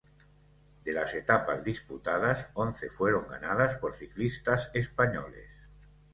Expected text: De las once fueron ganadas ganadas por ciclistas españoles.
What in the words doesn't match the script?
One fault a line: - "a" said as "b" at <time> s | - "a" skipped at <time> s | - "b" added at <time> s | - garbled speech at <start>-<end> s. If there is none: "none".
- "etapas disputadas" added at 1.1 s
- "ganadas" skipped at 3.7 s